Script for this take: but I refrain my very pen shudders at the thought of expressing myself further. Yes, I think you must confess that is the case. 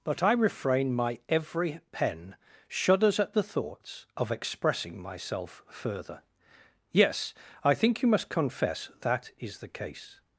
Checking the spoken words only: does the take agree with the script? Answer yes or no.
no